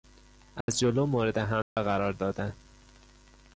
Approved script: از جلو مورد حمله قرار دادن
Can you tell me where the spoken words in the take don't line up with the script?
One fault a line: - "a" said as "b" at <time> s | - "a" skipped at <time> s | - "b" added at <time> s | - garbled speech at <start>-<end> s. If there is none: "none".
none